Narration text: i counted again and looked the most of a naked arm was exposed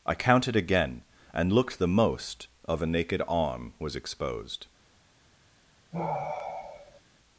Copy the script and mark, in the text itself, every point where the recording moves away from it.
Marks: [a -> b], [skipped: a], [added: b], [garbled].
i counted again and looked the most of a naked arm was exposed